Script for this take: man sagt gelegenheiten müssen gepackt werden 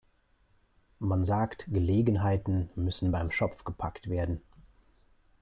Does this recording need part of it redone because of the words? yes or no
yes